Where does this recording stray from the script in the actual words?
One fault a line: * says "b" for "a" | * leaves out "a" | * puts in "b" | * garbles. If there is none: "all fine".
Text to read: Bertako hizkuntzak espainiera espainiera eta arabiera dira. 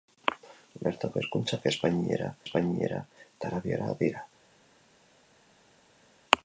all fine